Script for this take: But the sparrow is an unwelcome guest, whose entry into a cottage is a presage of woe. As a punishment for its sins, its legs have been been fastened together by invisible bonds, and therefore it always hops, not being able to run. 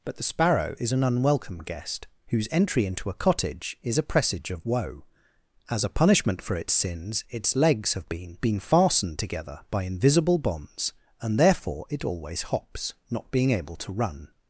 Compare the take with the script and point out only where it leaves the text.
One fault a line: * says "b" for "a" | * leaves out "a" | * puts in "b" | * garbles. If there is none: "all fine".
all fine